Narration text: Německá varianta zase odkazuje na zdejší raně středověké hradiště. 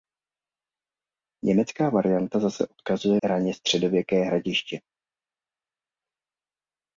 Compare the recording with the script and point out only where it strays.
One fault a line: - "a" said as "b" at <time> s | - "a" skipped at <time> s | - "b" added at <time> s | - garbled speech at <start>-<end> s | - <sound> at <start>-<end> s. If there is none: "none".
- "na zdejší" skipped at 3.2 s